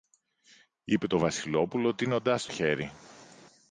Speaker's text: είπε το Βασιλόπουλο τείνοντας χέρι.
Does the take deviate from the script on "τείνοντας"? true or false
false